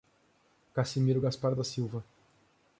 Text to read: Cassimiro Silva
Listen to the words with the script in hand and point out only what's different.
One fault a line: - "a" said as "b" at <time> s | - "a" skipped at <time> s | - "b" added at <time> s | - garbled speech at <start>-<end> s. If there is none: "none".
- "Gaspar da" added at 1.2 s